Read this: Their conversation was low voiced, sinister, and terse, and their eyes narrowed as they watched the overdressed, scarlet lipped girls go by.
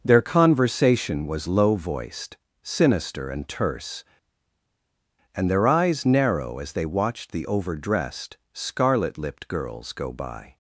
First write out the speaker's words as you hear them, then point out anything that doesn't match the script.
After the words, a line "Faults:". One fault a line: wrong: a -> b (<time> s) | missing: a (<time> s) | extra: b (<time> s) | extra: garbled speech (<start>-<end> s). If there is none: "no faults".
Their conversation was low voiced, sinister, and terse, and their eyes narrow as they watched the overdressed, scarlet lipped girls go by.
Faults:
wrong: narrowed -> narrow (6.0 s)